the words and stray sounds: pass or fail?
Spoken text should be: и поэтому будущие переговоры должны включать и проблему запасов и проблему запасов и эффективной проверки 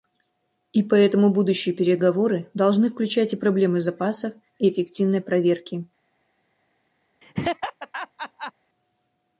fail